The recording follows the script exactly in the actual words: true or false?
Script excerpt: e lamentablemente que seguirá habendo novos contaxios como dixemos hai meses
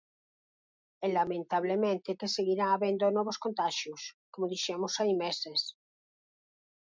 true